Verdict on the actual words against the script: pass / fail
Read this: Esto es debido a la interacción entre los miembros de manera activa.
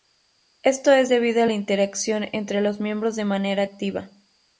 pass